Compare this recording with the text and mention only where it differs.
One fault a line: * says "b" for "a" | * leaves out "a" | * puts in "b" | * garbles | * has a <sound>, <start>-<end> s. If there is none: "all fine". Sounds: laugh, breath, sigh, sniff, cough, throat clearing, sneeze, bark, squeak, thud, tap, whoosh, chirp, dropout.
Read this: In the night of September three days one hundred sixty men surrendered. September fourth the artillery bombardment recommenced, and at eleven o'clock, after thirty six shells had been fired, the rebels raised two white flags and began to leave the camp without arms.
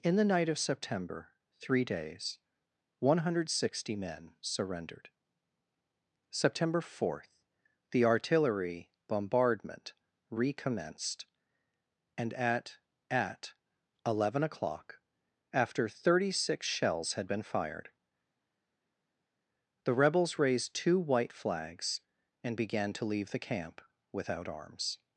* puts in "at"